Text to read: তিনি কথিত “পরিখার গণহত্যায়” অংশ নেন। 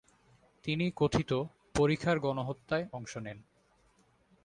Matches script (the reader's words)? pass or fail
pass